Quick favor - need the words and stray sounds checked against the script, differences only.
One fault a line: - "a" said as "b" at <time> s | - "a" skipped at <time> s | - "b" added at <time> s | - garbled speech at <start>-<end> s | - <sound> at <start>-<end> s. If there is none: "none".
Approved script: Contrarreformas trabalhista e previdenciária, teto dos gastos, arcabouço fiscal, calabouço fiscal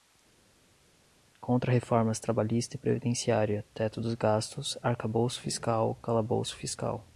none